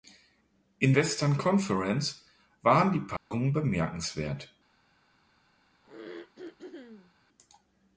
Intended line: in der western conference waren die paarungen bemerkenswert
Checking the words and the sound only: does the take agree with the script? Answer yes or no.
no